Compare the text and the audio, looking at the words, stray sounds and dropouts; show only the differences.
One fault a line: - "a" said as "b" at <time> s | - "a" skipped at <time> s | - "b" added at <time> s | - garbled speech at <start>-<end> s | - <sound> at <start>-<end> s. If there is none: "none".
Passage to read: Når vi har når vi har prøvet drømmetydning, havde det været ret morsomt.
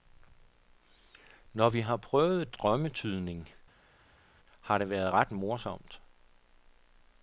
- "når vi har" skipped at 2.0 s
- "havde" said as "har" at 4.6 s